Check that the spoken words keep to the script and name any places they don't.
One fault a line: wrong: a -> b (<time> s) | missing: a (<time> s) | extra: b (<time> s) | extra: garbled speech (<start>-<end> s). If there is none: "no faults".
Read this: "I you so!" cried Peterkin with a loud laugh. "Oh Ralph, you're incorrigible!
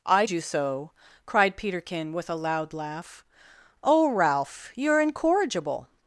no faults